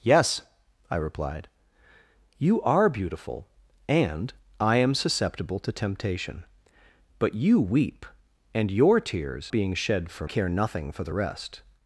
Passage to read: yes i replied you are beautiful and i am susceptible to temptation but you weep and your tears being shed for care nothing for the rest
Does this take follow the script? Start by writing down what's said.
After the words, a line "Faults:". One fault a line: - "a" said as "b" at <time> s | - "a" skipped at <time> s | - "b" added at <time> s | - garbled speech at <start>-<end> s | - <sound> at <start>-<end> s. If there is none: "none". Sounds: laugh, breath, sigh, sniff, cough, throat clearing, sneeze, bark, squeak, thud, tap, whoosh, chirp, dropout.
yes i replied you are beautiful and i am susceptible to temptation but you weep and your tears being shed for care nothing for the rest
Faults:
none